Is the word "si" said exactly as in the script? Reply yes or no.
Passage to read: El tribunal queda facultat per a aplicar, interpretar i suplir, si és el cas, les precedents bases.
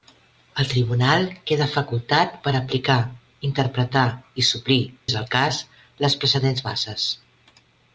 no